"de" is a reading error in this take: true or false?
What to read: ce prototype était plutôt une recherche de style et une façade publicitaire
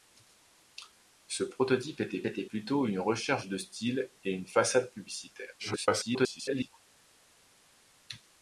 false